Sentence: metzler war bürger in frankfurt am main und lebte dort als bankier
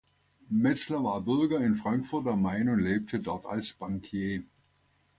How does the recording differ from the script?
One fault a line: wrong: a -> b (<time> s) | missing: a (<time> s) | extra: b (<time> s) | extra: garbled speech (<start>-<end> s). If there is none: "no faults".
no faults